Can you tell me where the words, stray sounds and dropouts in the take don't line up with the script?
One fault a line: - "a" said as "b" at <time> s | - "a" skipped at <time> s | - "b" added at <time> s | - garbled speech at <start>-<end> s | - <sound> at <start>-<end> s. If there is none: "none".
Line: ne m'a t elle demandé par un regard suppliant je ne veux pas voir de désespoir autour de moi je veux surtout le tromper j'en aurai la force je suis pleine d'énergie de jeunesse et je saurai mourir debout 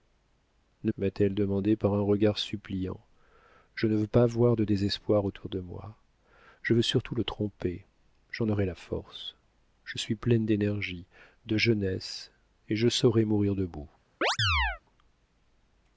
- chirp at 14.2-14.8 s